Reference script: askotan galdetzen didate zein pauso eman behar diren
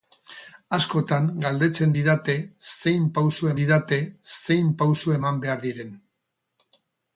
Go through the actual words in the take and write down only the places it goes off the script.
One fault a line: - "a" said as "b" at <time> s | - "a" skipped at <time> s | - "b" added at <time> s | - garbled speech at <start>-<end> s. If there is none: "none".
- "didate zein pauso" added at 3.6 s